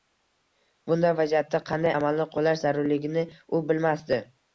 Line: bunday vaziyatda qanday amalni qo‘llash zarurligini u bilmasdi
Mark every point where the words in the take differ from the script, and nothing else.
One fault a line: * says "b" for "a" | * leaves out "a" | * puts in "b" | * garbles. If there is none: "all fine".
all fine